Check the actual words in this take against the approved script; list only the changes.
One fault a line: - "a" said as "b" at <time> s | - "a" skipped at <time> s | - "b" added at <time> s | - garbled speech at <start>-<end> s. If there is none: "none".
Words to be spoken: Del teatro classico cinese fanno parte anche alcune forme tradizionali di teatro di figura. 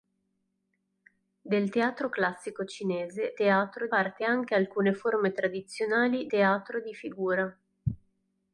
- "fanno" said as "teatro" at 3.3 s
- "di" skipped at 6.3 s